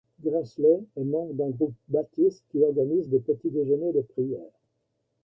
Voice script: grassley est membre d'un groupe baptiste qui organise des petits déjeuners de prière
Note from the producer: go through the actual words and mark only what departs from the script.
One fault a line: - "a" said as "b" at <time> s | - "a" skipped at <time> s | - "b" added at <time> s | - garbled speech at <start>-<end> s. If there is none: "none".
none